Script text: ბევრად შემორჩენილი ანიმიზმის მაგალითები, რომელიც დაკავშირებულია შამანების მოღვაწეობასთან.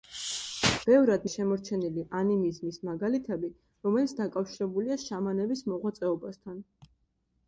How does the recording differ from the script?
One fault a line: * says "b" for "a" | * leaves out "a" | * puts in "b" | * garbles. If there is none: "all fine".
all fine